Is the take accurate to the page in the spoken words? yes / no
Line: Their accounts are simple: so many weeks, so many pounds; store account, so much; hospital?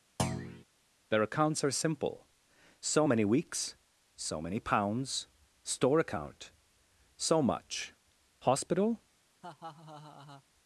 yes